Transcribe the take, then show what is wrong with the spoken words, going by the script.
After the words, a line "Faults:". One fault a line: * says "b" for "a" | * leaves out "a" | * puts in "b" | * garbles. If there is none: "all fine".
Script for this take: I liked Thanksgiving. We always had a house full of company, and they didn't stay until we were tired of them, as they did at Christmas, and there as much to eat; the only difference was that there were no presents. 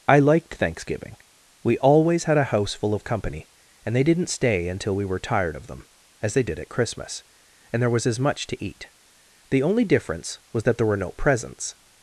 I liked Thanksgiving. We always had a house full of company, and they didn't stay until we were tired of them, as they did at Christmas, and there was as much to eat; the only difference was that there were no presents.
Faults:
* puts in "was"